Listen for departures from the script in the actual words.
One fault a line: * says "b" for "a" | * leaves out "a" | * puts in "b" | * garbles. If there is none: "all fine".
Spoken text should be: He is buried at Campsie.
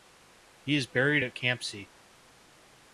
all fine